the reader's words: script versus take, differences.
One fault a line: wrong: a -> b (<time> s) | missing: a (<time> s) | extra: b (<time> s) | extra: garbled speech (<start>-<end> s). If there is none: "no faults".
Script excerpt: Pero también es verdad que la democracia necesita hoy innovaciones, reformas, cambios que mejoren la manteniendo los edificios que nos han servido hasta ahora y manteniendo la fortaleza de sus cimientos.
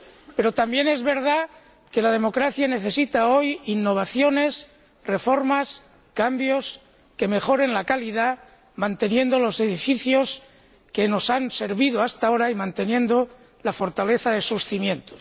extra: calidad (7.8 s)